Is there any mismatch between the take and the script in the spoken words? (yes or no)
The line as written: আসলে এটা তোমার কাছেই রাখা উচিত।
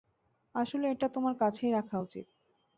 no